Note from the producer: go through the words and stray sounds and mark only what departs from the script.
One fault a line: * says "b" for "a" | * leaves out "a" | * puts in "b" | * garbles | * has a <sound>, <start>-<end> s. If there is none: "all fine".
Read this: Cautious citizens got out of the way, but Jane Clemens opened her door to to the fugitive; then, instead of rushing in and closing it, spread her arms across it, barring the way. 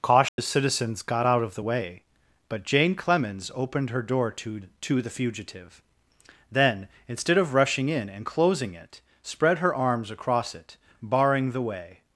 * has a dropout, 0.3-0.4 s